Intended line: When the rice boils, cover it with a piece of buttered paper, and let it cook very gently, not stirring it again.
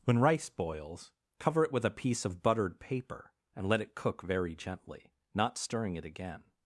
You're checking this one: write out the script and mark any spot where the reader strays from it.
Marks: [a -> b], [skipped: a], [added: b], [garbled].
When [skipped: the] rice boils, cover it with a piece of buttered paper, and let it cook very gently, not stirring it again.